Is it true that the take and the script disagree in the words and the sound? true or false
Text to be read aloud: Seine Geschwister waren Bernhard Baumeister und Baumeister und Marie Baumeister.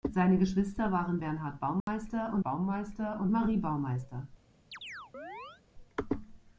true